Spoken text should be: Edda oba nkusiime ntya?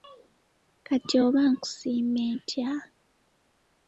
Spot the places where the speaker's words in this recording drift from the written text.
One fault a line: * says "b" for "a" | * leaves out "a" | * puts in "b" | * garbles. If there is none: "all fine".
* says "Kati" for "Edda"